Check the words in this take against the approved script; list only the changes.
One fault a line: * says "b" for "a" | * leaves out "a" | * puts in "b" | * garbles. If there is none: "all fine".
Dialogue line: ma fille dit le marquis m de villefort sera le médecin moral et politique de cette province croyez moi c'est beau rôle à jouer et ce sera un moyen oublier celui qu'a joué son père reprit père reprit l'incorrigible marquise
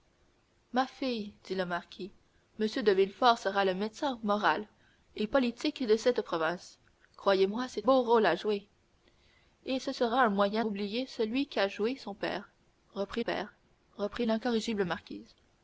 all fine